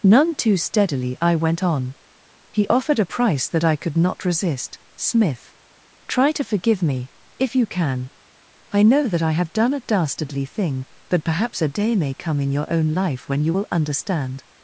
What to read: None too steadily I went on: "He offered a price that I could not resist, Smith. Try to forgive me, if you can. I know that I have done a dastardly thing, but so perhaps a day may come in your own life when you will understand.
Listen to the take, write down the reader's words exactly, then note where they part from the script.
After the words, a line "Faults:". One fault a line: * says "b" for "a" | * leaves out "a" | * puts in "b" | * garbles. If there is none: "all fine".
None too steadily I went on: "He offered a price that I could not resist, Smith. Try to forgive me, if you can. I know that I have done a dastardly thing, but perhaps a day may come in your own life when you will understand.
Faults:
* leaves out "so"